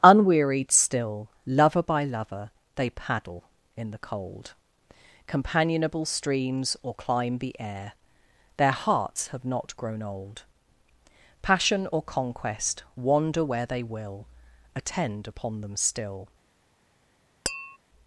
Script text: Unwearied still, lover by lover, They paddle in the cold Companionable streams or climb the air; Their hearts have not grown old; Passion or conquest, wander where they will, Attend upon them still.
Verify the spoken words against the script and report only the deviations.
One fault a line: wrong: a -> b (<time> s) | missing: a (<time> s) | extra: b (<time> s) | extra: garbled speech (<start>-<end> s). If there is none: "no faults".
no faults